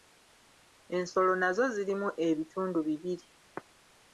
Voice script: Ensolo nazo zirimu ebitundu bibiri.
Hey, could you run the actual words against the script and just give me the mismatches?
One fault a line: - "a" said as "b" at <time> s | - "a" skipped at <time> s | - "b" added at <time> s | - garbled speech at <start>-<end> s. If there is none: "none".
none